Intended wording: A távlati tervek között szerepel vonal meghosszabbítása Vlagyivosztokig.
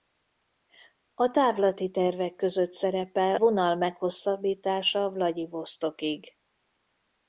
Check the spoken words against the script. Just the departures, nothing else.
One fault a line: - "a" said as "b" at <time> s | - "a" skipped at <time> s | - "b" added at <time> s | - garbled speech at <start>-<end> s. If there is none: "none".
none